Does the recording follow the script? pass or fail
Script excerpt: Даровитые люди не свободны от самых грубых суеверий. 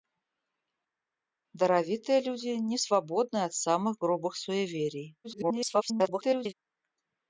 fail